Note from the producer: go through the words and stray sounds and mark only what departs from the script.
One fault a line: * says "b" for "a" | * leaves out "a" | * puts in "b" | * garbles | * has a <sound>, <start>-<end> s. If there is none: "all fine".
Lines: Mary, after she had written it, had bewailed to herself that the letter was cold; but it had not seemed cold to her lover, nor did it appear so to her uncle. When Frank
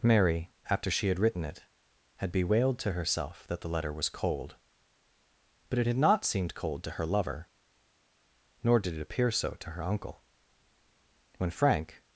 all fine